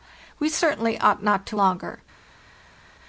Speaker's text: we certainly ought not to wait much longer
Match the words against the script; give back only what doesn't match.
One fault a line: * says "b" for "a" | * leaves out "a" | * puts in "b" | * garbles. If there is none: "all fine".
* leaves out "wait much"